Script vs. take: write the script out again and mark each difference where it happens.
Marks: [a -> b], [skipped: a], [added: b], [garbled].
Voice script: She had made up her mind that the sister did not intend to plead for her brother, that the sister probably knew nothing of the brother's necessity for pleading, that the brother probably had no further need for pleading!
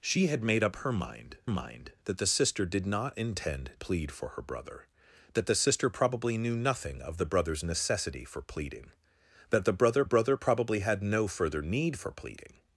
She had made up her mind [added: mind] that the sister did not intend [skipped: to] plead for her brother, that the sister probably knew nothing of the brother's necessity for pleading, that the brother [added: brother] probably had no further need for pleading!